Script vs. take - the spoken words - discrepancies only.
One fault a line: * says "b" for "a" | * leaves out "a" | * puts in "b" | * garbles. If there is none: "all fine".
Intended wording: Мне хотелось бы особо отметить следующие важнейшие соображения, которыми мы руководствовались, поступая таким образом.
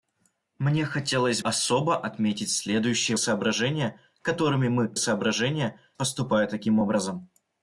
* leaves out "бы"
* leaves out "важнейшие"
* says "соображения" for "руководствовались"